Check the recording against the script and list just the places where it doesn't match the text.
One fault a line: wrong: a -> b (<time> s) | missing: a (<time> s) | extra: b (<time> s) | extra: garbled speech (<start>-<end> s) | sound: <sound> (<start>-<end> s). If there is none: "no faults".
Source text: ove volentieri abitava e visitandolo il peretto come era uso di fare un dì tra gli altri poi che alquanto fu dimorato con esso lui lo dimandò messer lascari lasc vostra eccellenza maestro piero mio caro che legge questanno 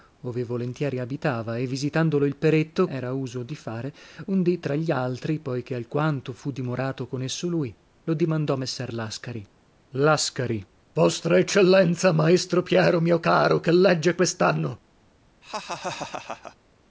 missing: come (2.9 s)
sound: laugh (15.4-16.6 s)